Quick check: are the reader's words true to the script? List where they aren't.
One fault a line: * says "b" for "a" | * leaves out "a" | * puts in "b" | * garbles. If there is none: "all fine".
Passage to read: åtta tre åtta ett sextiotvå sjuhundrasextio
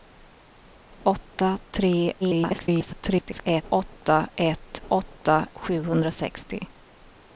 * garbles
* says "åtta" for "sextiotvå"